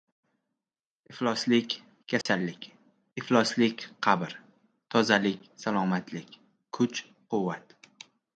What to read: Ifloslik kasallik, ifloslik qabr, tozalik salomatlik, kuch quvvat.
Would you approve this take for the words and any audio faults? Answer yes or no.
no